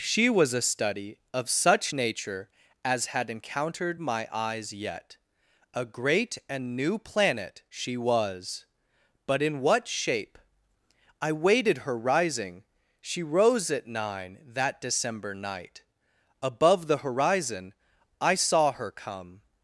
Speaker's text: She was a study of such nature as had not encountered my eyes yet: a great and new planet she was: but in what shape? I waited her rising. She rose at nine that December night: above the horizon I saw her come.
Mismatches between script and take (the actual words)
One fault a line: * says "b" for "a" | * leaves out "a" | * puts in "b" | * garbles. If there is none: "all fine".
* leaves out "not"